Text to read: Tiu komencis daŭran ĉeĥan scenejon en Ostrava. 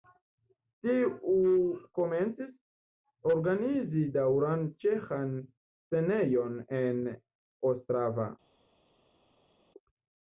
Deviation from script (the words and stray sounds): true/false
true